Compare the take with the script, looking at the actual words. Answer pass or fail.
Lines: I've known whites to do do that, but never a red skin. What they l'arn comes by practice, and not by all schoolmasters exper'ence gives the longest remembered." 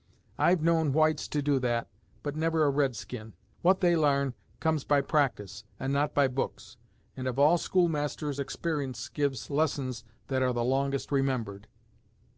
fail